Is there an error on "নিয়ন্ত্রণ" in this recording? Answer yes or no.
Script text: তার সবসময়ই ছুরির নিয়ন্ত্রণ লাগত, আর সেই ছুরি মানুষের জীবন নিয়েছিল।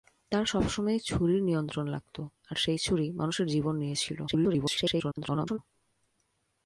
no